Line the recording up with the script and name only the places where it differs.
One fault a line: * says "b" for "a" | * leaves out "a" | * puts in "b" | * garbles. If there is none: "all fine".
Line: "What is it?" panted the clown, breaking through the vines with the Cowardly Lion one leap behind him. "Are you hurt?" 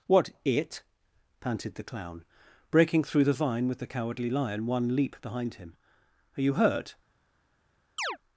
* leaves out "is"
* says "vine" for "vines"